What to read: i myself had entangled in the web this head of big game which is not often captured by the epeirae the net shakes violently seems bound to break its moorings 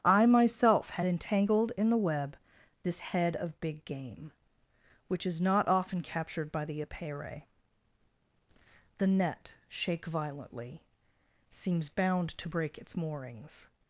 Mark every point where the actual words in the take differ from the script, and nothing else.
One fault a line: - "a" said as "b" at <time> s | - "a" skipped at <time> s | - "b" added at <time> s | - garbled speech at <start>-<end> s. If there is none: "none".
- "shakes" said as "shake" at 9.7 s